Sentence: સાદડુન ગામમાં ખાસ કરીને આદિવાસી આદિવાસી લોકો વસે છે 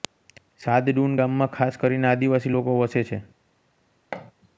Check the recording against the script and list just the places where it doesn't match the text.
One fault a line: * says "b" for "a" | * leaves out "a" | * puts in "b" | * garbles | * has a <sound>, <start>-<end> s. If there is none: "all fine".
* leaves out "આદિવાસી"
* has a thud, 4.1-4.3 s